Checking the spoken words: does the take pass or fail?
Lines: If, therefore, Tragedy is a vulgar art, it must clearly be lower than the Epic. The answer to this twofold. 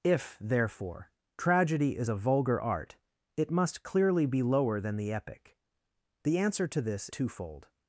pass